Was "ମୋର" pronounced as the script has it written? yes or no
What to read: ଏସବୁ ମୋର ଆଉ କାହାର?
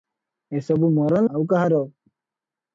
yes